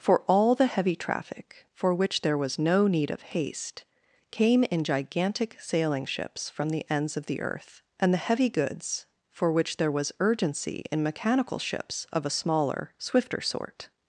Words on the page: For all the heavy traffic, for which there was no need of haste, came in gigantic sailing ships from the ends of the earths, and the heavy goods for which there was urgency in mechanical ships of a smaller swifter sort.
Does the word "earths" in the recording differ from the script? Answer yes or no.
yes